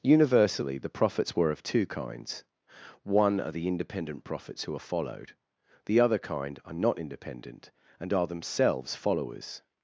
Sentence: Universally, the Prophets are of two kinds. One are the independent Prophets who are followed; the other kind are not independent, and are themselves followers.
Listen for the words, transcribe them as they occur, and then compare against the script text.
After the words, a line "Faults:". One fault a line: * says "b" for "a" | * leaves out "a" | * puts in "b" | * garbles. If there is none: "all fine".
Universally, the Prophets were of two kinds. One are the independent Prophets who are followed; the other kind are not independent, and are themselves followers.
Faults:
* says "were" for "are"